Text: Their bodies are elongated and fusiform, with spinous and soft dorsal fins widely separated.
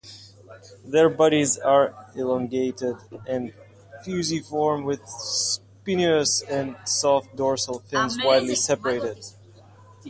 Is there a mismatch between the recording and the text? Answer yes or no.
no